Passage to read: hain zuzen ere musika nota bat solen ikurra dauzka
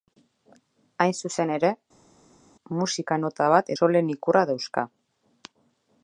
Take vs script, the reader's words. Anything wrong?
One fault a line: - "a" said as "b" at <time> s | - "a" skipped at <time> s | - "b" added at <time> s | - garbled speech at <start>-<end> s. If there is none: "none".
none